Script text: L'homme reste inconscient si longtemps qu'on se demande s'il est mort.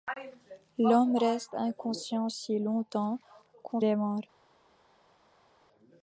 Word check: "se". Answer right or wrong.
wrong